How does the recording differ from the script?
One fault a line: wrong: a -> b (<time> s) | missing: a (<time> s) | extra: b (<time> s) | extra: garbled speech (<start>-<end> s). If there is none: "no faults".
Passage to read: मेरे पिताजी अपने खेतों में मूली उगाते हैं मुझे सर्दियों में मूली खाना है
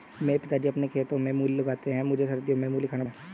no faults